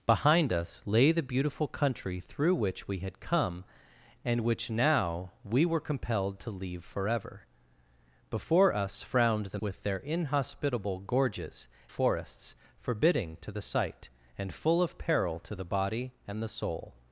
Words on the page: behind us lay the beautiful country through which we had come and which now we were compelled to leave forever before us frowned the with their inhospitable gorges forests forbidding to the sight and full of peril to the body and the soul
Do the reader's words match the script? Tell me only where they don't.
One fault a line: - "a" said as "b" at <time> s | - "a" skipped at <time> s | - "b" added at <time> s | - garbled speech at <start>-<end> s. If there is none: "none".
none